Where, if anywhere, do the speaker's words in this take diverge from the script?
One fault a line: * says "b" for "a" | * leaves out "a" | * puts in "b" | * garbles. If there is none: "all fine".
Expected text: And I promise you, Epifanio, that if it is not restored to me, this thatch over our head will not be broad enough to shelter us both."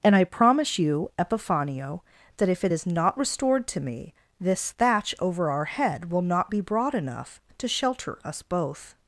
all fine